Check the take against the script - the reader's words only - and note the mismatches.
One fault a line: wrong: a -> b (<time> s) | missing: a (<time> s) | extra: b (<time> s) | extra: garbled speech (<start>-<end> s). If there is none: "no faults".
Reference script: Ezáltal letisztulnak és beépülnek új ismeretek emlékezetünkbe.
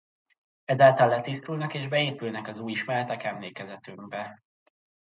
extra: az (2.5 s)